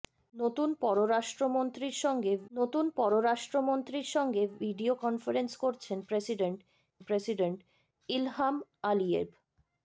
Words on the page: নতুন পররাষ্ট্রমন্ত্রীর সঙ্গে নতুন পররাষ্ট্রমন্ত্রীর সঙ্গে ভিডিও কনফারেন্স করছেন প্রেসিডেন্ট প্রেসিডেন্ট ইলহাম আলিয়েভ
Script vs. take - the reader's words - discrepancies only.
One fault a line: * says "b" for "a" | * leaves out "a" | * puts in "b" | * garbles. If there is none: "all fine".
all fine